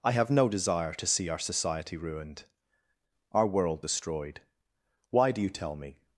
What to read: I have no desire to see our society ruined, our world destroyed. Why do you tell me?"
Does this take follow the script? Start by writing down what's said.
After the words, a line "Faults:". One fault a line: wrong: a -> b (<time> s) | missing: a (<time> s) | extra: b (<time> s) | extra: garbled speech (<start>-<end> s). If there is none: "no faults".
I have no desire to see our society ruined, our world destroyed. Why do you tell me?"
Faults:
no faults